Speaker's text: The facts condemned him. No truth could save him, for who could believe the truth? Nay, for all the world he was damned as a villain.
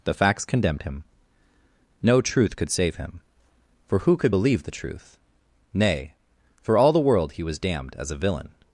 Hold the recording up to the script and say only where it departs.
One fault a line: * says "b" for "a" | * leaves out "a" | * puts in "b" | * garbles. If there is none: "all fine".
all fine